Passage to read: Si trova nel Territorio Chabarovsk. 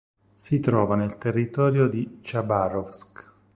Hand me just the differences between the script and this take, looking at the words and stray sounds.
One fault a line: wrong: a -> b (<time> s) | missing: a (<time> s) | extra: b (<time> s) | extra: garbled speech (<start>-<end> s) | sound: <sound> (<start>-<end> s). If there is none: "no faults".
extra: di (1.9 s)